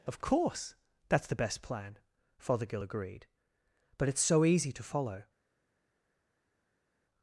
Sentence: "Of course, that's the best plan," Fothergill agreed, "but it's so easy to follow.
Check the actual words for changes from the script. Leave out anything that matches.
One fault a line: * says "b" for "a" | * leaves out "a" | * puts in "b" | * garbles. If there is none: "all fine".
all fine